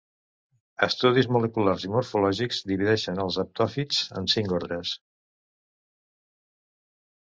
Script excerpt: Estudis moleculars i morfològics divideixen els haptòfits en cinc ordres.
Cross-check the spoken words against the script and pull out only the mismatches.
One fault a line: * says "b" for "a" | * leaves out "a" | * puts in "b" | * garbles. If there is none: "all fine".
all fine